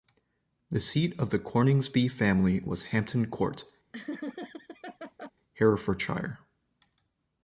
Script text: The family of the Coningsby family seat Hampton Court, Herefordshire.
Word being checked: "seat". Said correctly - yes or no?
no